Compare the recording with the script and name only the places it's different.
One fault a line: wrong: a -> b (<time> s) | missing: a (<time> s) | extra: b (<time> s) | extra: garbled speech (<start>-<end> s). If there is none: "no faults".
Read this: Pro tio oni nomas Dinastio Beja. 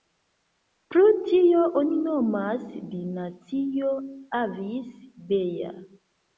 extra: Avis (4.4 s)